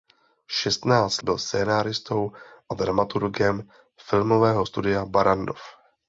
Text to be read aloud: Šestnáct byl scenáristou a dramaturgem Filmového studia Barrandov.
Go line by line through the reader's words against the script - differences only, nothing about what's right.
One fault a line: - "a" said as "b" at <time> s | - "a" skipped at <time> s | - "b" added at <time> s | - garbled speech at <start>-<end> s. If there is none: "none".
none